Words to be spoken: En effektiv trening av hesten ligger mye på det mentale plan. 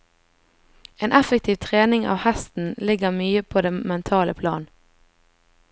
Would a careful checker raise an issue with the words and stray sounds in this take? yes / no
no